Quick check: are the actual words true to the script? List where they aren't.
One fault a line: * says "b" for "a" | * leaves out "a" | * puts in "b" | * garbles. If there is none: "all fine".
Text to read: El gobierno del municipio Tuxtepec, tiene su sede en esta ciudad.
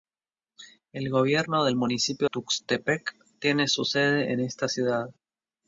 all fine